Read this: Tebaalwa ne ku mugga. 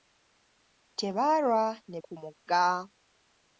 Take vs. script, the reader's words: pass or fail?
pass